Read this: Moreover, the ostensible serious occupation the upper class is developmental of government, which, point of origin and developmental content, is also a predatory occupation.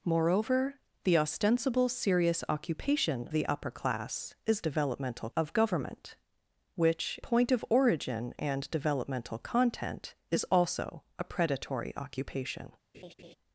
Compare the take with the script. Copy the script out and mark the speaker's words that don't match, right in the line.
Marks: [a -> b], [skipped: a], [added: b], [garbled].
Moreover, the ostensible serious occupation the upper class is developmental of government, which, point of origin and developmental content, is also a predatory occupation.